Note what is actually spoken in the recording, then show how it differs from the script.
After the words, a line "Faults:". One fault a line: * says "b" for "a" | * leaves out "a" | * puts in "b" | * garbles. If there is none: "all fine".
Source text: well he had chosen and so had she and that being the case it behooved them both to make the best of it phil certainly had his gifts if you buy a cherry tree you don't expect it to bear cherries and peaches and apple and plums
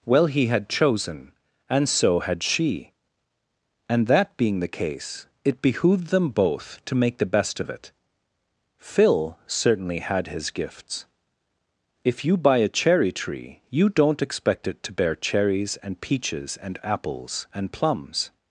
well he had chosen and so had she and that being the case it behooved them both to make the best of it phil certainly had his gifts if you buy a cherry tree you don't expect it to bear cherries and peaches and apples and plums
Faults:
* says "apples" for "apple"